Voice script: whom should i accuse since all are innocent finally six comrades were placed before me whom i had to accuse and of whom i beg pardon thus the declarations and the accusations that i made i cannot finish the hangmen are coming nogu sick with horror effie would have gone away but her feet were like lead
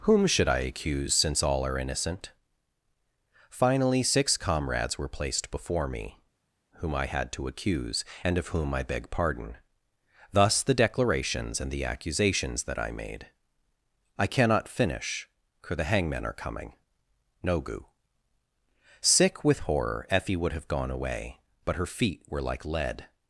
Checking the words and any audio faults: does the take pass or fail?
fail